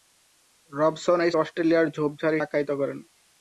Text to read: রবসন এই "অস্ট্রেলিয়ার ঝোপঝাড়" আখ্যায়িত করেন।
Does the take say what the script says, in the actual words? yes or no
yes